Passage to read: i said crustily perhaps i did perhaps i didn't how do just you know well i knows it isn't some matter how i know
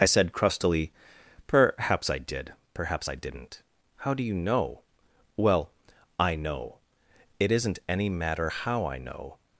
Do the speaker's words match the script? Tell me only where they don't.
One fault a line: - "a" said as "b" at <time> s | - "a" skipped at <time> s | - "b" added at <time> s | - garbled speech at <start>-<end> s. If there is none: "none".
- "just" skipped at 4.2 s
- "knows" said as "know" at 6.4 s
- "some" said as "any" at 7.9 s